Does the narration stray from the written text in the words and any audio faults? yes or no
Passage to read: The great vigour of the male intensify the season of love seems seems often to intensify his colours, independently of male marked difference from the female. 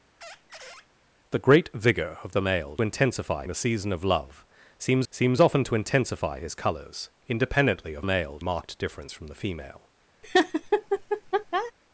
yes